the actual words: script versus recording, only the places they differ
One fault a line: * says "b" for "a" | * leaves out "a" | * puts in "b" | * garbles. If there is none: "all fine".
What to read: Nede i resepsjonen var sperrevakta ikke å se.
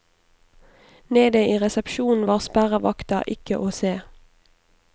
all fine